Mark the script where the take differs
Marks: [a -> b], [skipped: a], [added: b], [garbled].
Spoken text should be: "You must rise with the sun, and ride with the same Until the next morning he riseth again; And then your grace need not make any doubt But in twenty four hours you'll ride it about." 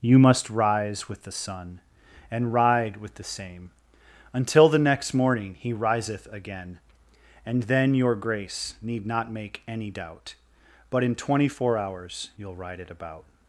"You must rise with the sun, and ride with the same Until the next morning he riseth again; And then your grace need not make any doubt But in twenty four hours you'll ride it about."